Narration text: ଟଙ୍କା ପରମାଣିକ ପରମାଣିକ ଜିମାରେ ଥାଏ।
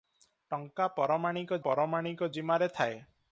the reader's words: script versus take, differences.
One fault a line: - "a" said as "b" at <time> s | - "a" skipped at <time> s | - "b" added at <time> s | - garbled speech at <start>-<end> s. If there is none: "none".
none